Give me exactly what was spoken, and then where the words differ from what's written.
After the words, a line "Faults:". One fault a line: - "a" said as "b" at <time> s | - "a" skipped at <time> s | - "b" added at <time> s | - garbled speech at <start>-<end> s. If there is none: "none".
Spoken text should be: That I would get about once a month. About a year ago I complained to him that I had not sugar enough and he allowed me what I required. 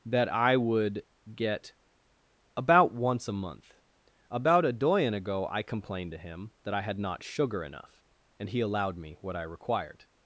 That I would get about once a month. About a doyen ago I complained to him that I had not sugar enough and he allowed me what I required.
Faults:
- "year" said as "doyen" at 4.7 s